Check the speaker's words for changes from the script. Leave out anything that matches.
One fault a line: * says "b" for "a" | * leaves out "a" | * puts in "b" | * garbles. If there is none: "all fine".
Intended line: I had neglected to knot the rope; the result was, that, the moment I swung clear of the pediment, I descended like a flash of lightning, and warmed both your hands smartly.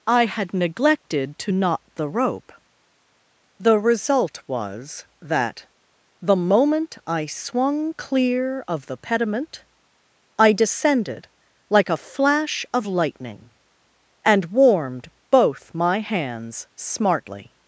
* says "my" for "your"